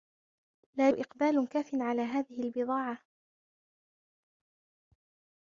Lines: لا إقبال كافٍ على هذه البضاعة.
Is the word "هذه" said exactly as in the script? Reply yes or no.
yes